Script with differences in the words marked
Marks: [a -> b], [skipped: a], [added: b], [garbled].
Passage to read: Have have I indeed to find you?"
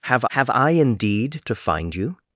Have have I indeed to find you?"